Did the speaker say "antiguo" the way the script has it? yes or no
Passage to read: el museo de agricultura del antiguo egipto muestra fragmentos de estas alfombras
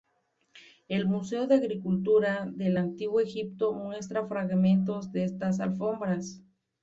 yes